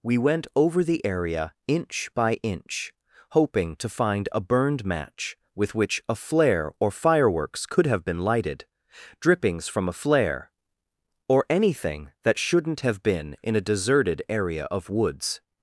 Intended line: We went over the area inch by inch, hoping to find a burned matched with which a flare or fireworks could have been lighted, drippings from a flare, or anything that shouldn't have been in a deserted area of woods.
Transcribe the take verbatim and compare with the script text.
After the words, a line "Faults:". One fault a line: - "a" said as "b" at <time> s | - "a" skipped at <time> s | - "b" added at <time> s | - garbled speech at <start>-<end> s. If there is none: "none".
We went over the area inch by inch, hoping to find a burned match with which a flare or fireworks could have been lighted, drippings from a flare, or anything that shouldn't have been in a deserted area of woods.
Faults:
- "matched" said as "match" at 4.8 s